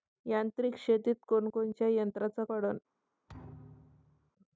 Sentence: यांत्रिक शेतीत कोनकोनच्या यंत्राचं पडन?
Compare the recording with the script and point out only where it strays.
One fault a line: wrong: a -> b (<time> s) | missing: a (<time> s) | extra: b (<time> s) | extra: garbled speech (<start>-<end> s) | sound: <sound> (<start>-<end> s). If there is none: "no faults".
sound: thud (3.3-4.3 s)